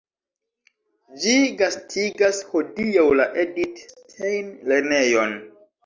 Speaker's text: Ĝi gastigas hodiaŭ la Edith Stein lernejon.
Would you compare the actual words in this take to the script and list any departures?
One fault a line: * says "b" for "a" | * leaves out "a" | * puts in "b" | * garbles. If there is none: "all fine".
all fine